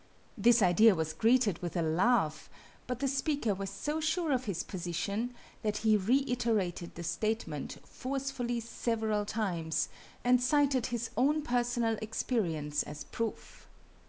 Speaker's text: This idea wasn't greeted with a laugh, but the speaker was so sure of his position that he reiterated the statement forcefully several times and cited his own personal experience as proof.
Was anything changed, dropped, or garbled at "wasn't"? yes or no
yes